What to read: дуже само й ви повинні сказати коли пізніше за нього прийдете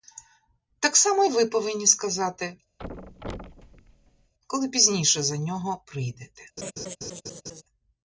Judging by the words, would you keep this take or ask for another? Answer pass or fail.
fail